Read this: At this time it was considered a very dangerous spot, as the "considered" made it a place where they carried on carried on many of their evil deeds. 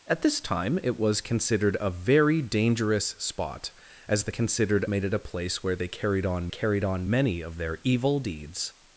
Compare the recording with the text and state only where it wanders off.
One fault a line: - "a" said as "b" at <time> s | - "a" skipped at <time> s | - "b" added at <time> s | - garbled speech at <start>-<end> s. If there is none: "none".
none